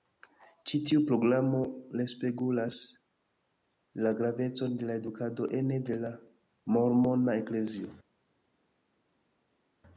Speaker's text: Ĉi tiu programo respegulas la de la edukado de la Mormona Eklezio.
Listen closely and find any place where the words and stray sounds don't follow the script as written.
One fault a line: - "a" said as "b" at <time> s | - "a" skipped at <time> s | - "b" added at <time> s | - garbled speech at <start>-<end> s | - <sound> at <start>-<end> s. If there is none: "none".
- "gravecon" added at 4.2 s
- "ene" added at 5.6 s